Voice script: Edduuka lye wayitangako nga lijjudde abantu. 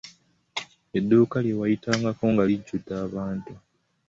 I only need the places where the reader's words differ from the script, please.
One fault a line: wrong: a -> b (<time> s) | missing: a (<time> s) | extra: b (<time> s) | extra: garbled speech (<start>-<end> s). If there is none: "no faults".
no faults